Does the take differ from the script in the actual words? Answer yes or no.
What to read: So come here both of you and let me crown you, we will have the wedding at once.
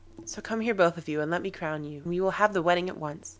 no